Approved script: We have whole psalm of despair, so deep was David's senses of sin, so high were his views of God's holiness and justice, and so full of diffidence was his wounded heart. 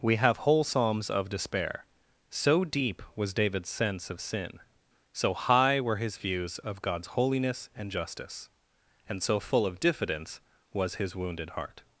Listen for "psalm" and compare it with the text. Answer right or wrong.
wrong